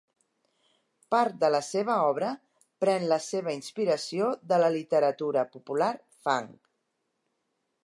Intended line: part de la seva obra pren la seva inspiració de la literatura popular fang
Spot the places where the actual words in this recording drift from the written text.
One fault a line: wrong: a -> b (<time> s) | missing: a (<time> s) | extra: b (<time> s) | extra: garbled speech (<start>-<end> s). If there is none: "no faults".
no faults